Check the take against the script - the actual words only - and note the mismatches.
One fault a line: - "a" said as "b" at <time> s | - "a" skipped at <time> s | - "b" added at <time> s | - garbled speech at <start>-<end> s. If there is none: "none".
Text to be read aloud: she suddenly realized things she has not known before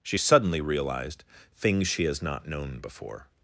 none